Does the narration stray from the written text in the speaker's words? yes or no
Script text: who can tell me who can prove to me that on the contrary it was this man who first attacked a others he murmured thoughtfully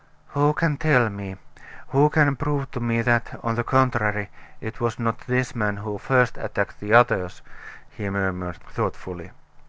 yes